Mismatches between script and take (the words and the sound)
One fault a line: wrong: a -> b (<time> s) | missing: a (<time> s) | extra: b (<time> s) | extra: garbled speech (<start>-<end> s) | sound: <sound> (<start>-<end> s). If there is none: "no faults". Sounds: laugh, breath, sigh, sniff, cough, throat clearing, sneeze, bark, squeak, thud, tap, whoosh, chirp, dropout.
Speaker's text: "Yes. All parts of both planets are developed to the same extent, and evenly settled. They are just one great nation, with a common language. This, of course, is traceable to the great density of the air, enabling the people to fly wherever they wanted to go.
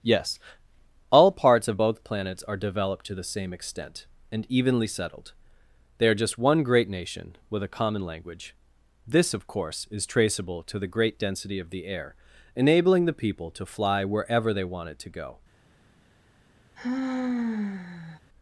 sound: sigh (16.8-18.2 s)